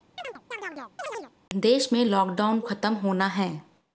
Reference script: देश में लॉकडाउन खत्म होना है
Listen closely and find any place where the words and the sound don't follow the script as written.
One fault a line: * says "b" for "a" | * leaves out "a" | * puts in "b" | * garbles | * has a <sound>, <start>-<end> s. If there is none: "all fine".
* has a chirp, 0.2-1.3 s